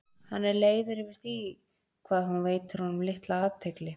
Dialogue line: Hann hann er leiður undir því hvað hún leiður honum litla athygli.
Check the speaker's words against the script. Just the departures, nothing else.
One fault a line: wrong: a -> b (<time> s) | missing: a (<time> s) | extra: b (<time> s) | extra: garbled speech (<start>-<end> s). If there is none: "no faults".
missing: hann (0.5 s)
wrong: undir -> yfir (1.0 s)
wrong: leiður -> veitir (2.5 s)